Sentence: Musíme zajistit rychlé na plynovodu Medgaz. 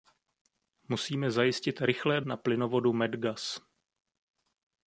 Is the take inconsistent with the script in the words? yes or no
no